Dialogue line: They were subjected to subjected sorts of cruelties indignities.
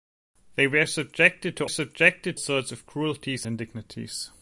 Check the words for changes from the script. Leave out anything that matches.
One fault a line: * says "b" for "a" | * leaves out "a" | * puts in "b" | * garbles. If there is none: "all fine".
all fine